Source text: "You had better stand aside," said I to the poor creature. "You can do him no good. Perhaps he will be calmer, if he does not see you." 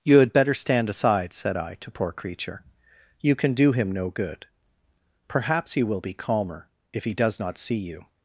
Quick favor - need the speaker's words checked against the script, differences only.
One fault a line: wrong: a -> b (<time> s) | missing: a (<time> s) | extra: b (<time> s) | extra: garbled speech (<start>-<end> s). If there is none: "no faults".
missing: the (1.9 s)